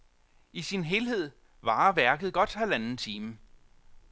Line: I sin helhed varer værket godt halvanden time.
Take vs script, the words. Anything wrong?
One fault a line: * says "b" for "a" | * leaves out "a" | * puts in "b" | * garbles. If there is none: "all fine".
all fine